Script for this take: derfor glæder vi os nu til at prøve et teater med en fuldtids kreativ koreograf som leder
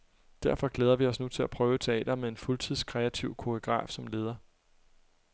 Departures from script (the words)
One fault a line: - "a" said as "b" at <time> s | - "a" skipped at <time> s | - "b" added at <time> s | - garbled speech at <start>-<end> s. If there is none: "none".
none